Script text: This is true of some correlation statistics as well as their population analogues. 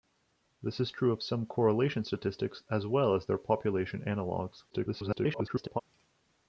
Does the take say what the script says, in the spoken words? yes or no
no